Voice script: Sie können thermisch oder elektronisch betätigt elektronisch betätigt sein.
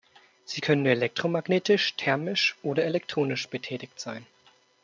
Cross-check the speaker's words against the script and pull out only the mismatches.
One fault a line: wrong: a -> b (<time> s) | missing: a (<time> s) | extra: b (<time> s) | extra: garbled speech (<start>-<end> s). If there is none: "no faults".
extra: elektromagnetisch (0.9 s)
missing: elektronisch betätigt (4.0 s)